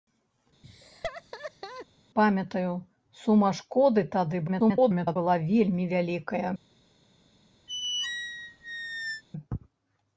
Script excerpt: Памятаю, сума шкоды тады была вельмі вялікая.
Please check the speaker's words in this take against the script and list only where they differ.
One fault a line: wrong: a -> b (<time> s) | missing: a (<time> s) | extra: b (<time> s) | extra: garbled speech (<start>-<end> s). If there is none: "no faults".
extra: garbled speech (4.5-5.2 s)